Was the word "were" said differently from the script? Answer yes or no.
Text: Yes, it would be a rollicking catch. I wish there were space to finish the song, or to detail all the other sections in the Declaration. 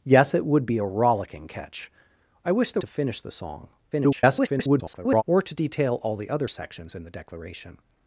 yes